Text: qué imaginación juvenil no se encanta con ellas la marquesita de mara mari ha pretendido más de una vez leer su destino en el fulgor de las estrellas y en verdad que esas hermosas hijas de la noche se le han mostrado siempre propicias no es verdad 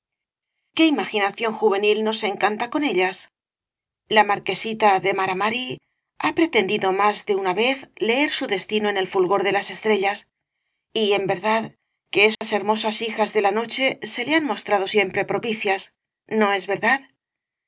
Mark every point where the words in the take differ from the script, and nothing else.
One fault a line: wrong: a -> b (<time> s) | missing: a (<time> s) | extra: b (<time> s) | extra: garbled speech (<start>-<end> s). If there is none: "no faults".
no faults